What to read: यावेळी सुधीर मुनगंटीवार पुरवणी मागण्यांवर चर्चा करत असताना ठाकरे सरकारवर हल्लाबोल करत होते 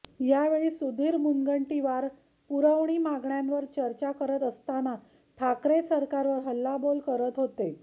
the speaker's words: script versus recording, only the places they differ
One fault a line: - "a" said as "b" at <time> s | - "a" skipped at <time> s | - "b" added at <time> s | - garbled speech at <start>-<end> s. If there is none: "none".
none